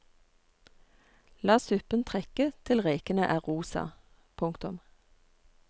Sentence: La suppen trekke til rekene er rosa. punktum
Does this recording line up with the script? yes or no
yes